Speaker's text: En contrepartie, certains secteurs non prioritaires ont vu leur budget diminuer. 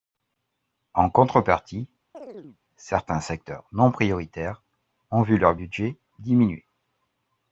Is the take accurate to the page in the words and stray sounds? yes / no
no